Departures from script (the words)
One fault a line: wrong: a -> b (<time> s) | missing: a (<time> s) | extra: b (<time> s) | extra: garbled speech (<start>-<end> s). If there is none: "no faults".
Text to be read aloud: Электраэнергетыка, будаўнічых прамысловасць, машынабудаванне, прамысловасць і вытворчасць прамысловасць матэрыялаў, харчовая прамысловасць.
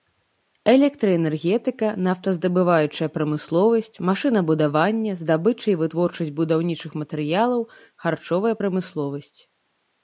wrong: будаўнічых -> нафтаздабываючая (2.1 s)
wrong: прамысловасць -> здабыча (5.2 s)
wrong: прамысловасць -> будаўнічых (6.4 s)